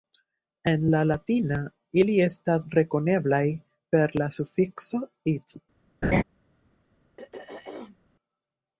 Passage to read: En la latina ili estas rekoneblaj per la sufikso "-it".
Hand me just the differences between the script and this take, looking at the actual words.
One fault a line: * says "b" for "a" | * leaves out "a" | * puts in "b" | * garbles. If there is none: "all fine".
all fine